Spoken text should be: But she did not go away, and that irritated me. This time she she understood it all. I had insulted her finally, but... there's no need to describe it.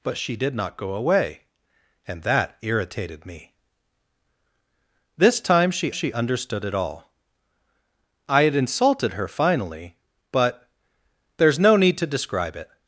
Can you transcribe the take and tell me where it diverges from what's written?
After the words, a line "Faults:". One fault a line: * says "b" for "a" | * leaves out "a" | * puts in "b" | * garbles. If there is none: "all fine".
But she did not go away, and that irritated me. This time she she understood it all. I had insulted her finally, but... there's no need to describe it.
Faults:
all fine